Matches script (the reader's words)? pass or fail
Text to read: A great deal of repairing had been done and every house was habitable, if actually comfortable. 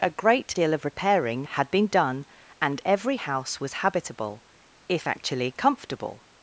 pass